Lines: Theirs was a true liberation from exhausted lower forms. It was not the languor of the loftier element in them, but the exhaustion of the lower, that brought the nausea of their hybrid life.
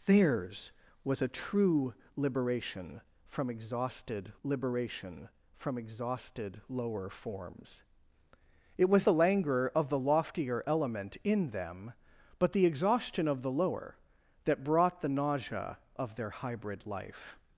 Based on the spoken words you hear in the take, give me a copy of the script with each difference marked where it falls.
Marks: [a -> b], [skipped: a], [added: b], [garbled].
Theirs was a true liberation from exhausted [added: liberation from exhausted] lower forms. It was [skipped: not] the languor of the loftier element in them, but the exhaustion of the lower, that brought the nausea of their hybrid life.